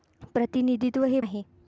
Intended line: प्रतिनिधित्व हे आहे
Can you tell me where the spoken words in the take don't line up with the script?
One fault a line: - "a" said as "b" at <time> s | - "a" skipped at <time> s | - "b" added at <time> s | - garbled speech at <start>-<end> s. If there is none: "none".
none